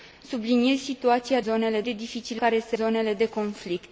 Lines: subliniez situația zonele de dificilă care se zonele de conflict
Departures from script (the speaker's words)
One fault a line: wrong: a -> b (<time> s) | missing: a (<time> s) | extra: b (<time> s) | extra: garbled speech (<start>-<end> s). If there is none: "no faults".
no faults